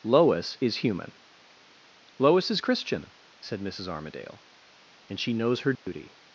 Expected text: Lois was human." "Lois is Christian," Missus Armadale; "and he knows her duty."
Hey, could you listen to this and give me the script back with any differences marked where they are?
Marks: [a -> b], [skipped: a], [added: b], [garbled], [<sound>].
Lois [was -> is] human." "Lois is Christian," [added: said] Missus Armadale; "and [he -> she] knows her duty." [dropout]